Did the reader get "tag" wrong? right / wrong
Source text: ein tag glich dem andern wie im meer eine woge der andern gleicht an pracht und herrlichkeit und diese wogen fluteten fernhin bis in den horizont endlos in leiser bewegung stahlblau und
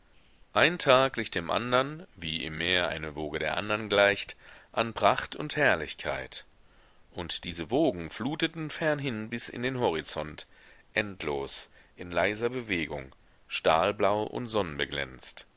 right